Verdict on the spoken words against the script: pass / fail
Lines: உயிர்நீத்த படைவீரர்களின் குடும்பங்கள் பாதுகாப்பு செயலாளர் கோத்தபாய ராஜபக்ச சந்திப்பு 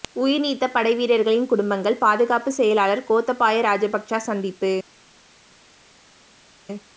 pass